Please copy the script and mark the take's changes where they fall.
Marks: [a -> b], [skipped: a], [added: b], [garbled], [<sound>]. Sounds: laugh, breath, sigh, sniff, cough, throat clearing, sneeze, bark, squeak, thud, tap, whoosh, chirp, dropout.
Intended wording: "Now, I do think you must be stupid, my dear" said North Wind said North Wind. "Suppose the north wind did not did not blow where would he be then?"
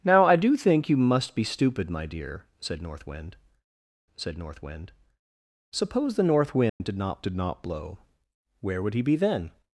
"Now, I do think you must be stupid, my dear" said North Wind said North Wind. "Suppose the north wind [dropout] did not did not blow where would he be then?"